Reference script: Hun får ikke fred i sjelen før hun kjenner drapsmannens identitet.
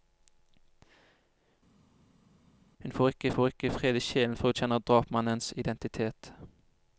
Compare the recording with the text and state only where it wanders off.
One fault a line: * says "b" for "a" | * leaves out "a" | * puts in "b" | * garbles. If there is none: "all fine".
* puts in "får ikke"